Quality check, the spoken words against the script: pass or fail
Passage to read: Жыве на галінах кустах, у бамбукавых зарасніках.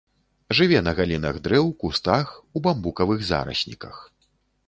fail